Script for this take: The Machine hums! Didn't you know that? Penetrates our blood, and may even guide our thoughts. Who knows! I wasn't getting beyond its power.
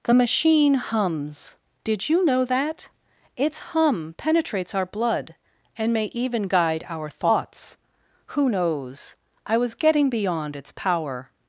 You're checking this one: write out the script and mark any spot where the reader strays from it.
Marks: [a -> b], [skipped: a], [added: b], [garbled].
The Machine hums! [Didn't -> Did] you know that? [added: Its hum] Penetrates our blood, and may even guide our thoughts. Who knows! I [wasn't -> was] getting beyond its power.